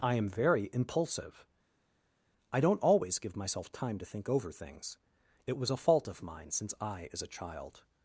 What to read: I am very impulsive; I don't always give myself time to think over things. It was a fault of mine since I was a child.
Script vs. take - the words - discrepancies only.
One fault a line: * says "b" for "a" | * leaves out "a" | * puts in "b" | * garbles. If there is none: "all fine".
* says "is" for "was"